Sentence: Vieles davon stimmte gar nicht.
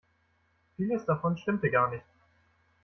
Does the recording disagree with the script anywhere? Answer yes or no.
no